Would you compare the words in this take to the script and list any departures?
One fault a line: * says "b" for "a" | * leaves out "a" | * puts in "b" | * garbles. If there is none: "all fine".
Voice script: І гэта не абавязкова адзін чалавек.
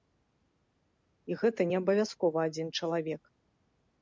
all fine